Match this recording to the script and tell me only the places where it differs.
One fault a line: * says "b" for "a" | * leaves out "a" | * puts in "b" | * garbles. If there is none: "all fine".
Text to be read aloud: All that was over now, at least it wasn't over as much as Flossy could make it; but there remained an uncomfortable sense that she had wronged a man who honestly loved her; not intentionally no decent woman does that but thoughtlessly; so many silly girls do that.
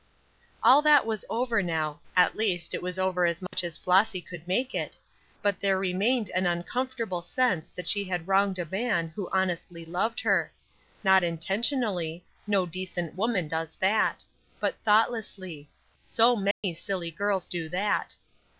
* says "was" for "wasn't"